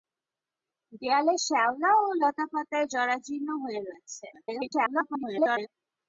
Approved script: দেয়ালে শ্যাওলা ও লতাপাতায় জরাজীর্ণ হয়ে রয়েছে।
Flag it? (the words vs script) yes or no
yes